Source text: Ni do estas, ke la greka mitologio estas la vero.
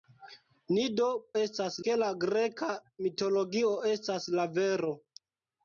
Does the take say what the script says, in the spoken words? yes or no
yes